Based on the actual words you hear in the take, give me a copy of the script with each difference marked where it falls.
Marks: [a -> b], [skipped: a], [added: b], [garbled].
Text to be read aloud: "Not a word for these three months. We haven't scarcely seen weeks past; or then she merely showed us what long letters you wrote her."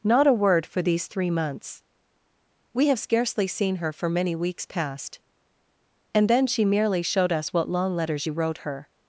"Not a word for these three months. We [haven't -> have] scarcely seen [added: her for many] weeks past; [or -> and] then she merely showed us what long letters you wrote her."